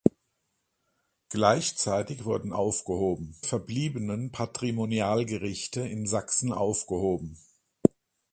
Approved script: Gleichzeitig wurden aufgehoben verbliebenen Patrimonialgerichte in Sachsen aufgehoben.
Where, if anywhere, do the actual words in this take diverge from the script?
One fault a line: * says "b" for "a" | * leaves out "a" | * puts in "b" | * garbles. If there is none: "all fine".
all fine